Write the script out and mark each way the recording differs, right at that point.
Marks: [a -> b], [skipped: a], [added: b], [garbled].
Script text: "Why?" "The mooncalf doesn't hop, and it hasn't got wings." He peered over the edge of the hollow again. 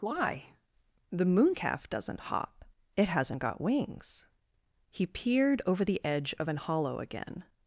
"Why?" "The mooncalf doesn't hop, [skipped: and] it hasn't got wings." He peered over the edge of [the -> an] hollow again.